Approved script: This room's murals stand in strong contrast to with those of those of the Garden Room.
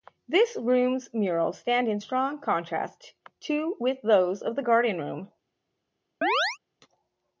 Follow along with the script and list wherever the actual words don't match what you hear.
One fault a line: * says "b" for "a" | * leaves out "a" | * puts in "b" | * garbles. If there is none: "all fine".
* leaves out "those of"